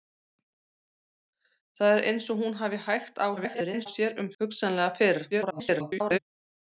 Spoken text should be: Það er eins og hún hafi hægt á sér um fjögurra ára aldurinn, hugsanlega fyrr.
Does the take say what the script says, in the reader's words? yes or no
no